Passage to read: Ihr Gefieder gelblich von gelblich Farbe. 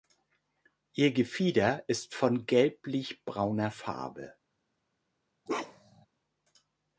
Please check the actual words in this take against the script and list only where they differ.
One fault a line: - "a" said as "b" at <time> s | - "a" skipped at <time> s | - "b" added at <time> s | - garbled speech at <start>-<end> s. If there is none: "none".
- "gelblich" said as "ist" at 1.9 s
- "brauner" added at 3.2 s